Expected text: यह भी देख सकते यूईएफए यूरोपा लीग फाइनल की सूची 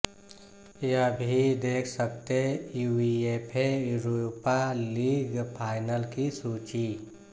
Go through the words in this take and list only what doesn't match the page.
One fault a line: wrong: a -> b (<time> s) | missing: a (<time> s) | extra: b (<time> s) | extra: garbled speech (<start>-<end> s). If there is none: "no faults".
no faults